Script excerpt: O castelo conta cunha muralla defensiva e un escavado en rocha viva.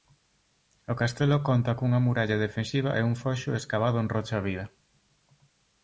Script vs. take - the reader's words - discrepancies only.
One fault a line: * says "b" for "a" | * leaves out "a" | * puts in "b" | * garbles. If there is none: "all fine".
* puts in "foxo"